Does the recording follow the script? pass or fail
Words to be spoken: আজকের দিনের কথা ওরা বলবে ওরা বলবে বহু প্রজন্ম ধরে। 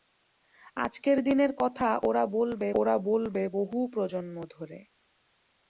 pass